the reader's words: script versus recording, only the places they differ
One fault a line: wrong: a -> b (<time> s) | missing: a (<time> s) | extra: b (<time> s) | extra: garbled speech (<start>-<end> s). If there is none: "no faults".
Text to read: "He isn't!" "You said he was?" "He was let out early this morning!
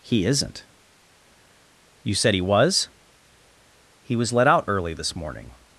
no faults